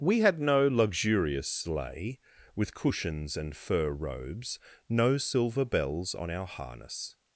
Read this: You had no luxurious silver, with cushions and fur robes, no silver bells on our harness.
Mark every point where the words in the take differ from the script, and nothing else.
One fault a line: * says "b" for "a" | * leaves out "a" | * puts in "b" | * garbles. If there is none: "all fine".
* says "We" for "You"
* says "sleigh" for "silver"